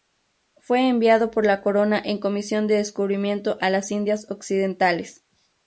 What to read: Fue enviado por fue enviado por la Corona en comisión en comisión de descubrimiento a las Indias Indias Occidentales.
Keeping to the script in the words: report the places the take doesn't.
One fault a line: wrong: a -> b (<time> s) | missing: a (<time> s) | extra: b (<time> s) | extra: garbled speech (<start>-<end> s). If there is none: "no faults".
missing: fue enviado por (1.4 s)
missing: en comisión (2.6 s)
missing: Indias (4.3 s)